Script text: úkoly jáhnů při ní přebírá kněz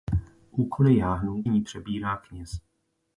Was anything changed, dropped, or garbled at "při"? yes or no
yes